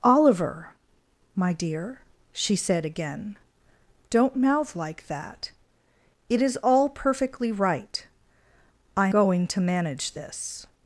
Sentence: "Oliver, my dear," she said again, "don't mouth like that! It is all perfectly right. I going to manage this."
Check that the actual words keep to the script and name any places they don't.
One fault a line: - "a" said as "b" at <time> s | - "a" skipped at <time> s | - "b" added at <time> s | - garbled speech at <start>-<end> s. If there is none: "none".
none